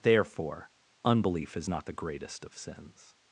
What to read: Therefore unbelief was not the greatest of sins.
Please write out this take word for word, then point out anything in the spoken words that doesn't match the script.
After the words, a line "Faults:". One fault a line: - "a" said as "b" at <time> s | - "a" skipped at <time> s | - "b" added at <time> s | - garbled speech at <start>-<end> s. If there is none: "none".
Therefore unbelief is not the greatest of sins.
Faults:
- "was" said as "is" at 1.6 s